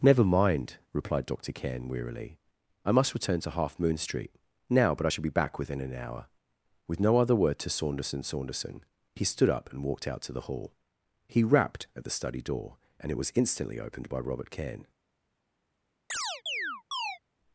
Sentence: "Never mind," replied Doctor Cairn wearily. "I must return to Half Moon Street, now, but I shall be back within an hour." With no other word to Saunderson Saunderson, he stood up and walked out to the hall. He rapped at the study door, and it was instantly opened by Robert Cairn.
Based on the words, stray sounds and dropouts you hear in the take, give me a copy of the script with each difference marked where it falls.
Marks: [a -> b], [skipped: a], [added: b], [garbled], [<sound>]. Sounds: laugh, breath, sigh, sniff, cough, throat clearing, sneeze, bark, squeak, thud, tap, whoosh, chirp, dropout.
"Never mind," replied Doctor Cairn wearily. "I must return to Half Moon Street, now, but I shall be back within an hour." With no other word to Saunderson Saunderson, he stood up and walked out to the hall. He rapped at the study door, and it was instantly opened by Robert Cairn. [chirp]